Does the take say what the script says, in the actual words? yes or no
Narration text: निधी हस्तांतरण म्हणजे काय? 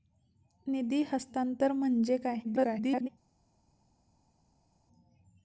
no